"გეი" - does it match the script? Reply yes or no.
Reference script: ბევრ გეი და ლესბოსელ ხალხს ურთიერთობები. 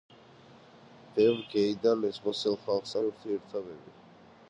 yes